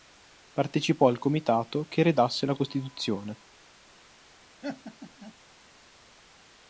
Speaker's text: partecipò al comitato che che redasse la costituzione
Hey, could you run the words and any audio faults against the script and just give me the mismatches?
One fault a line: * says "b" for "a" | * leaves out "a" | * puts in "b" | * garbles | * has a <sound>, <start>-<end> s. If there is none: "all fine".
* leaves out "che"
* has a laugh, 4.6-5.3 s